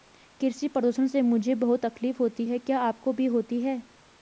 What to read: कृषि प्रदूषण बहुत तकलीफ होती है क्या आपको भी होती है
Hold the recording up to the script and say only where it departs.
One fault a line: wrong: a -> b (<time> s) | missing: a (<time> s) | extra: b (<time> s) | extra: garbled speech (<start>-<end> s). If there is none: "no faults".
extra: से मुझे (1.1 s)